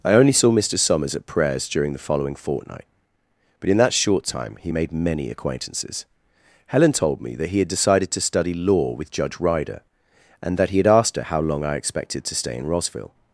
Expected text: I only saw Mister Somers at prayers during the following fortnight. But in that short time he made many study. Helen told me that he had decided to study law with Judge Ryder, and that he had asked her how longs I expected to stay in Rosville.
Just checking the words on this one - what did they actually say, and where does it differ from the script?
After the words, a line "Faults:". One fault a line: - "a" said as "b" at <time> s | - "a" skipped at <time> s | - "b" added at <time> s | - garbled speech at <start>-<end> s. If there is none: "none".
I only saw Mister Somers at prayers during the following fortnight. But in that short time he made many acquaintances. Helen told me that he had decided to study law with Judge Ryder, and that he had asked her how long I expected to stay in Rosville.
Faults:
- "study" said as "acquaintances" at 5.3 s
- "longs" said as "long" at 11.4 s